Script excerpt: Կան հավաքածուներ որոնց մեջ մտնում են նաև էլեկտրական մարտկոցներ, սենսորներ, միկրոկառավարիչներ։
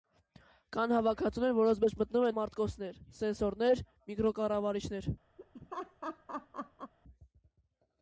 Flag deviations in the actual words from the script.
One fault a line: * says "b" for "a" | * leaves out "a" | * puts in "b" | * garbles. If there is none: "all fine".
* leaves out "նաև էլեկտրական"